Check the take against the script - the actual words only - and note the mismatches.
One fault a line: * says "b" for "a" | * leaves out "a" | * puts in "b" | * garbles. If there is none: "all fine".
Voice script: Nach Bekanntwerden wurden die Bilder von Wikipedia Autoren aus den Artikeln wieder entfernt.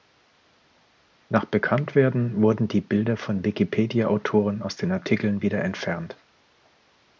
all fine